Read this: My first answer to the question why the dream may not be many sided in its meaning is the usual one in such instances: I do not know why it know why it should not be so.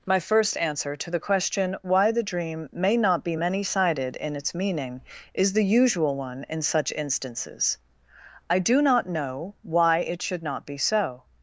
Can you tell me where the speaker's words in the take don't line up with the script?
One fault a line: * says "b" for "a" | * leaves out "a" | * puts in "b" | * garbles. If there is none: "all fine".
* leaves out "know why it"